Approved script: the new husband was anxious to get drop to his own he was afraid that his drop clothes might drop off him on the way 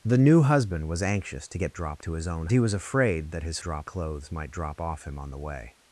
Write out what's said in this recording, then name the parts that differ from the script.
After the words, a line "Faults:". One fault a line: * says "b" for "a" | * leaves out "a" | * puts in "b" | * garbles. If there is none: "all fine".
the new husband was anxious to get drop to his own he was afraid that his drop clothes might drop off him on the way
Faults:
all fine